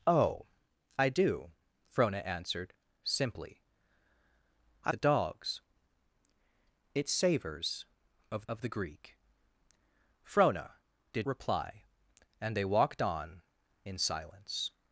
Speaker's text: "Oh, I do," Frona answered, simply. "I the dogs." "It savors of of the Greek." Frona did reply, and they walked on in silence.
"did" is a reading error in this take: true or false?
false